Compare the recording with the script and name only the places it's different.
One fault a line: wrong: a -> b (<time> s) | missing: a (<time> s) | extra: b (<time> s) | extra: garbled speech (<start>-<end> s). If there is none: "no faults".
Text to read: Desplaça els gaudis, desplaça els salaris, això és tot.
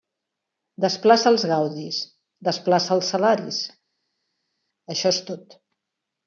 no faults